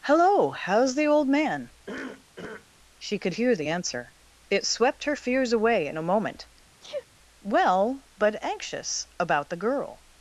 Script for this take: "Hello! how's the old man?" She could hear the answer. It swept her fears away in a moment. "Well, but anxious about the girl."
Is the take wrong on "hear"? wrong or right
right